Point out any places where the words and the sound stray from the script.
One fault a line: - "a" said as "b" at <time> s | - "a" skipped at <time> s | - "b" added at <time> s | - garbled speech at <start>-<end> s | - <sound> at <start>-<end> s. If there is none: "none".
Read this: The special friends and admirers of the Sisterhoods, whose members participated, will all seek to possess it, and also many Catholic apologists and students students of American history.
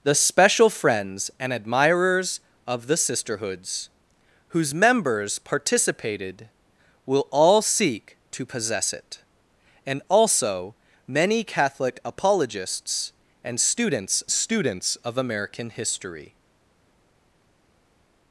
none